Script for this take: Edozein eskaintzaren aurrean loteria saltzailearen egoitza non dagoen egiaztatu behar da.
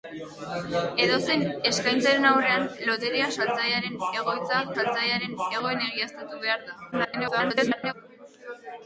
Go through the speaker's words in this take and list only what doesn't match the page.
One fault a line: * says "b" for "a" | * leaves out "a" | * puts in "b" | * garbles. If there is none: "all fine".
* says "saltzailearen" for "non"
* garbles